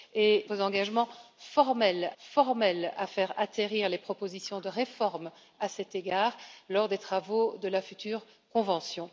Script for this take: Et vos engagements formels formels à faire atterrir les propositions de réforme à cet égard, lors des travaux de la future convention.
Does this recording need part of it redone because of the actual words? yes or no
no